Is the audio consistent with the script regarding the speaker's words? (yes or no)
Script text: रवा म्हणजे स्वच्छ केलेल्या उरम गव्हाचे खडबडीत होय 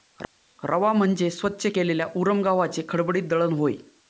no